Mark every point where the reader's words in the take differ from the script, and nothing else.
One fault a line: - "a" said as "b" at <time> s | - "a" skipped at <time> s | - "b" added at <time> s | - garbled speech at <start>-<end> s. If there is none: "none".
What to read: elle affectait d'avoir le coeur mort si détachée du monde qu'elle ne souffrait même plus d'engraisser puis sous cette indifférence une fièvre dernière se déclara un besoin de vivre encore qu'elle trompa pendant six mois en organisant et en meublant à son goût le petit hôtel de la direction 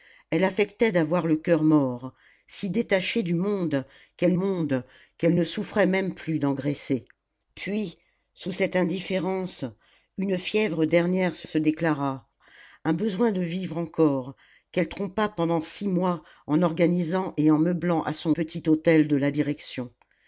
- "monde qu'elle" added at 4.3 s
- "se" added at 11.4 s
- "goût le" skipped at 18.3 s